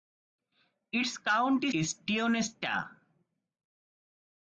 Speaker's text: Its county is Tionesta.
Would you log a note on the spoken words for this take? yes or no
no